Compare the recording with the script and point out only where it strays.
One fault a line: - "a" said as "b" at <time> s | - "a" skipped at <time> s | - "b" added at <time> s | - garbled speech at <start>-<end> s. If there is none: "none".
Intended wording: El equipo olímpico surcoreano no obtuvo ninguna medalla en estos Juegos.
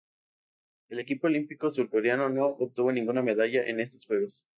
none